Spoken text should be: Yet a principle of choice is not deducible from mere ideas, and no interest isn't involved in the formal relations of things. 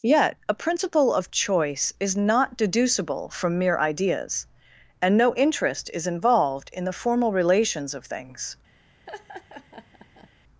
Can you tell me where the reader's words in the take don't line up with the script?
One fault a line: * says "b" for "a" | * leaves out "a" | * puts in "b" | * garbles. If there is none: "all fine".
* says "is" for "isn't"